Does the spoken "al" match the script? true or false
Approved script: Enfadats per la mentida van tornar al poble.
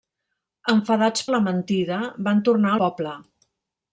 false